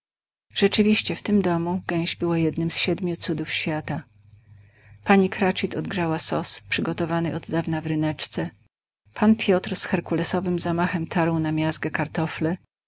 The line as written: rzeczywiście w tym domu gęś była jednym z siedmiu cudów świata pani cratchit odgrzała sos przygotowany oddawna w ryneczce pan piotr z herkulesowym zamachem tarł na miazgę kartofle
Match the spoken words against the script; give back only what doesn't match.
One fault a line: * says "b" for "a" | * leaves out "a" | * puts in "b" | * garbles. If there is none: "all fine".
all fine